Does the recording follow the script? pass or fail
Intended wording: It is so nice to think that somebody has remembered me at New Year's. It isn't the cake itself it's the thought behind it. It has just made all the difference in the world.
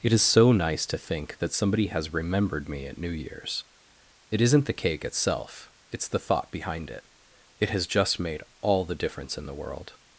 pass